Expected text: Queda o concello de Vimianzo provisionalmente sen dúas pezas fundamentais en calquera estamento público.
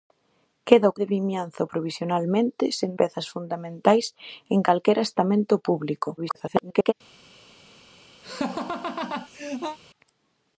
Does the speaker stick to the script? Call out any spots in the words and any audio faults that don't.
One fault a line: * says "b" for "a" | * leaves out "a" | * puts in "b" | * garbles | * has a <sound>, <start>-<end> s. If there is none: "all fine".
* leaves out "concello"
* leaves out "dúas"
* garbles
* has a laugh, 8.2-9.8 s